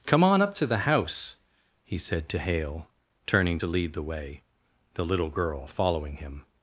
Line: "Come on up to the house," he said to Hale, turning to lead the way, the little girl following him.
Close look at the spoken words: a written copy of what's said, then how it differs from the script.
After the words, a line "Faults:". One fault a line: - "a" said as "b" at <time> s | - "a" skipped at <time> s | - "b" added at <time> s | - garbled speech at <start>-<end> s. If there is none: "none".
"Come on up to the house," he said to Hale, turning to lead the way, the little girl following him.
Faults:
none